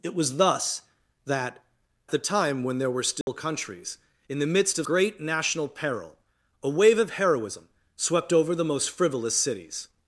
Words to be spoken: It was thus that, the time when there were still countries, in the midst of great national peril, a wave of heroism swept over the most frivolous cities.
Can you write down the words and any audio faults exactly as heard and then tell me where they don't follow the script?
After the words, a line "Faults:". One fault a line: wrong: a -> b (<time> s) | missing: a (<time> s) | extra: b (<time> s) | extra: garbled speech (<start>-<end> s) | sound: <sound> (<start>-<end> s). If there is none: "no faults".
It was thus that, the time when there were still countries, in the midst of great national peril, a wave of heroism swept over the most frivolous cities.
Faults:
sound: dropout (3.2-3.3 s)